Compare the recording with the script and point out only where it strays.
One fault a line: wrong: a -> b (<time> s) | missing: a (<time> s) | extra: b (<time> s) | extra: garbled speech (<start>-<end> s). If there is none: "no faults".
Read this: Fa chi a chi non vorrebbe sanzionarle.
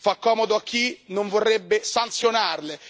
wrong: chi -> comodo (0.1 s)